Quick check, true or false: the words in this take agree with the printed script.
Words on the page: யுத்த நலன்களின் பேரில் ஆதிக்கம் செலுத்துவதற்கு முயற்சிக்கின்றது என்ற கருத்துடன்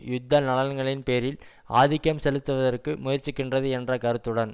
true